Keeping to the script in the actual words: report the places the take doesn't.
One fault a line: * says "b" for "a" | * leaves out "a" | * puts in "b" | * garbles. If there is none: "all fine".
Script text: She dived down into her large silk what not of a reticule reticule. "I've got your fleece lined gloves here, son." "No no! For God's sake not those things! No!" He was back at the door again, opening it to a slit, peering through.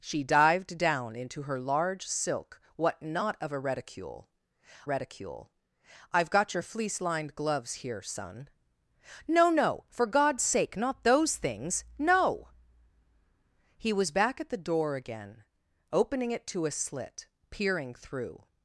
all fine